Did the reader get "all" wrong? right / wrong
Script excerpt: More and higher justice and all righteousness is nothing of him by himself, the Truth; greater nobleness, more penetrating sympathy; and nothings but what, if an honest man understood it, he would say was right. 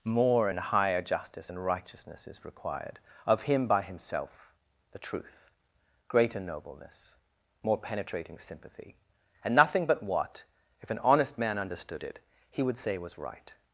wrong